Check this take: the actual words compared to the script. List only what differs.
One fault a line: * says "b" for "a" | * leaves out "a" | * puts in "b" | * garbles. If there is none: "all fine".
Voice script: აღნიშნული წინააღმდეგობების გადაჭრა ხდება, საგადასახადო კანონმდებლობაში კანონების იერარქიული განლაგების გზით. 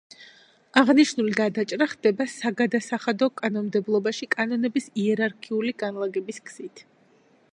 * leaves out "წინააღმდეგობების"